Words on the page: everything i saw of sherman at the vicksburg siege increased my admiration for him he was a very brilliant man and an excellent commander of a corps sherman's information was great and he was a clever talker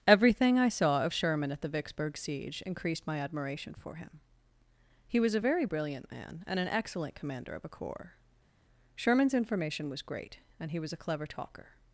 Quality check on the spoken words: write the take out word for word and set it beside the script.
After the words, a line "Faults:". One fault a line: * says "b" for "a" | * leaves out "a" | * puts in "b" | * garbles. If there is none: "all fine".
everything i saw of sherman at the vicksburg siege increased my admiration for him he was a very brilliant man and an excellent commander of a corps sherman's information was great and he was a clever talker
Faults:
all fine